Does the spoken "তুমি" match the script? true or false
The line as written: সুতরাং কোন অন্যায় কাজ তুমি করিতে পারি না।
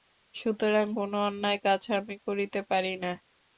false